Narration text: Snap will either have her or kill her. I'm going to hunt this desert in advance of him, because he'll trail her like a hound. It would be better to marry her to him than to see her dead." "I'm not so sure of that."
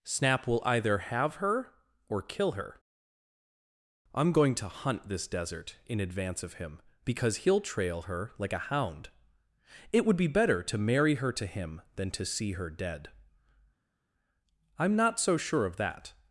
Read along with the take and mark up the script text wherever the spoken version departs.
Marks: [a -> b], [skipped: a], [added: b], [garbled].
Snap will either have her or kill her. I'm going to hunt this desert in advance of him, because he'll trail her like a hound. It would be better to marry her to him than to see her dead." "I'm not so sure of that."